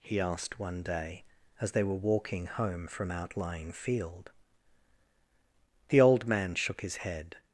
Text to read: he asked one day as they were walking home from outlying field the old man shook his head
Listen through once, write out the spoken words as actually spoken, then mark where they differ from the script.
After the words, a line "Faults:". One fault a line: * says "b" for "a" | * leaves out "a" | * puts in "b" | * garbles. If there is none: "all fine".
he asked one day as they were walking home from outlying field the old man shook his head
Faults:
all fine